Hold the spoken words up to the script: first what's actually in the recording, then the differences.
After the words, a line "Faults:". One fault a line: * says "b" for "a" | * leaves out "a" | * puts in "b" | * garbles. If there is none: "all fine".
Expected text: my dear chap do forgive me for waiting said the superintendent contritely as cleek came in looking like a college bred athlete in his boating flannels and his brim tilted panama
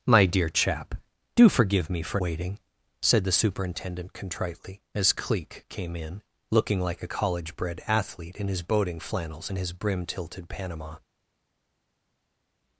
my dear chap do forgive me for waiting said the superintendent contritely as cleek came in looking like a college bred athlete in his boating flannels and his brim tilted panama
Faults:
all fine